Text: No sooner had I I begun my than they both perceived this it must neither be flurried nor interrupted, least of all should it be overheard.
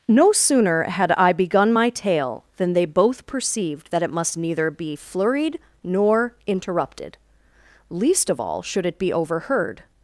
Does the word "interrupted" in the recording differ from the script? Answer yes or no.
no